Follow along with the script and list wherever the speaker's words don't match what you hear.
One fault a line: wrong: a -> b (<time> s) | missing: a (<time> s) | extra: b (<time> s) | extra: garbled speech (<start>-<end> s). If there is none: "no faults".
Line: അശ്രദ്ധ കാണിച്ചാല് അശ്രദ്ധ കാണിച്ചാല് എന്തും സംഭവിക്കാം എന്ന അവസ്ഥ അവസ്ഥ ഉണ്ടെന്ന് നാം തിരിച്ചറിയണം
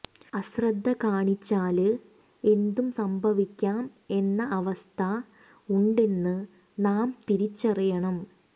missing: അശ്രദ്ധ കാണിച്ചാല് (1.9 s)
missing: അവസ്ഥ (5.0 s)